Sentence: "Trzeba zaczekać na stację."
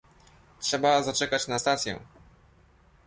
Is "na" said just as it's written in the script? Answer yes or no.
yes